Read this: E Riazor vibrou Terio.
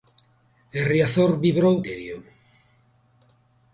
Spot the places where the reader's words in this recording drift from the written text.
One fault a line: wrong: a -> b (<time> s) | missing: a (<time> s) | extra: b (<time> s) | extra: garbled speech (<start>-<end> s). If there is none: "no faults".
no faults